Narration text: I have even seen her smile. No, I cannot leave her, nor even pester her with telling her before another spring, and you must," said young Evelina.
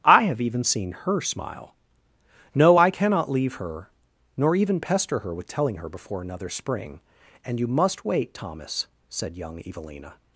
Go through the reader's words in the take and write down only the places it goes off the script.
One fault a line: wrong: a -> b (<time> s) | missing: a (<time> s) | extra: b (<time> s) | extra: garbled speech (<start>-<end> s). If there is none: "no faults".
extra: wait Thomas (8.0 s)